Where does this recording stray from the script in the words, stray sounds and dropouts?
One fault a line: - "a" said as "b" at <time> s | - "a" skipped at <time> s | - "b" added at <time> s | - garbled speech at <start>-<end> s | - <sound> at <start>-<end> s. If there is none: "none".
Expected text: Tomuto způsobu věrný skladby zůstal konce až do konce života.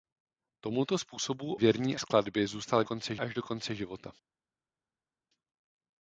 none